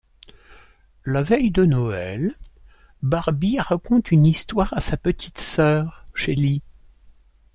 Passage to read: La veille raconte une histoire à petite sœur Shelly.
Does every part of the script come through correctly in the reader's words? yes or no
no